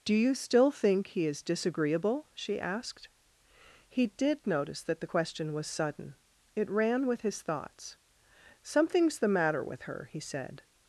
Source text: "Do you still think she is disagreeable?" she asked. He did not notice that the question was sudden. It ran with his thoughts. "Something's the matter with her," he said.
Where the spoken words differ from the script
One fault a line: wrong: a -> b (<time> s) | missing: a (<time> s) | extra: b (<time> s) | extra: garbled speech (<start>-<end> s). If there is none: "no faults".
wrong: she -> he (1.1 s)
missing: not (4.5 s)